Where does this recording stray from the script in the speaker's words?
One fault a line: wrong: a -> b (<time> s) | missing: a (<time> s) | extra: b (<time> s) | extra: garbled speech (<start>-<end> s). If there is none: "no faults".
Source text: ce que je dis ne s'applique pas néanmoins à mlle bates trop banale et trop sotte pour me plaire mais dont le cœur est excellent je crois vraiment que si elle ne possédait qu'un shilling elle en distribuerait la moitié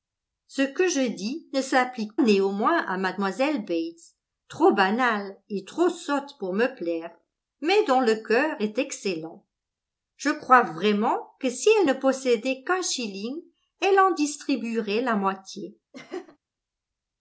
missing: pas (2.2 s)